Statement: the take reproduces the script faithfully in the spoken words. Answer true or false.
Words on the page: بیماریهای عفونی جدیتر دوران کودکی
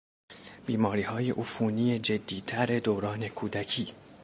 true